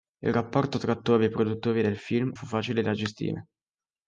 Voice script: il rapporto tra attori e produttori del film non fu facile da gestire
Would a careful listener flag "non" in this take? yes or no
yes